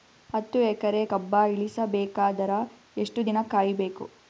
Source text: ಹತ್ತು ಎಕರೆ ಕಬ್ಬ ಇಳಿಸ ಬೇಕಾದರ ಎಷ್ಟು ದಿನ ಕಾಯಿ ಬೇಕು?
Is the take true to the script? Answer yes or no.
yes